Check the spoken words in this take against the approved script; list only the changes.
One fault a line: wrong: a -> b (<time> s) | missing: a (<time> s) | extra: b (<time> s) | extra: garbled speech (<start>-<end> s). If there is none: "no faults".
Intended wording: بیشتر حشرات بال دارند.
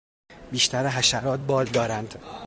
no faults